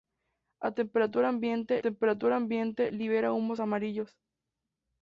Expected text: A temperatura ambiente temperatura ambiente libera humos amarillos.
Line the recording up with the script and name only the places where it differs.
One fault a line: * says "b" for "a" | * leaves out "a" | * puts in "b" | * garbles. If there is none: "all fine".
all fine